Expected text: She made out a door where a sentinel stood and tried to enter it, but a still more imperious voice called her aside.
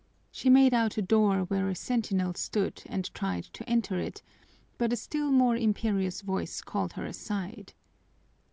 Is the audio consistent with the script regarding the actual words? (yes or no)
yes